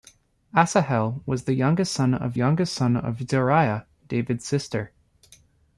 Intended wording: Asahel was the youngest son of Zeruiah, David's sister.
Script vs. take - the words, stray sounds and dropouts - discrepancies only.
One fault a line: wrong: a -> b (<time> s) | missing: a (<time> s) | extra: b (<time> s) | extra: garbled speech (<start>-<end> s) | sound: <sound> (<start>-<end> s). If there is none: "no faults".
extra: youngest son of (2.3 s)